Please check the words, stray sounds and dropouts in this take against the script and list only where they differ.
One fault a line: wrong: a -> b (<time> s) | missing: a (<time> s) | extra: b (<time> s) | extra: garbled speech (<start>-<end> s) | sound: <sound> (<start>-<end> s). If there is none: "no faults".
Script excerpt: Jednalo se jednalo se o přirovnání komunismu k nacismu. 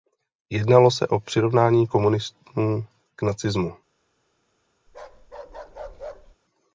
missing: jednalo se (1.1 s)
sound: bark (4.9-6.4 s)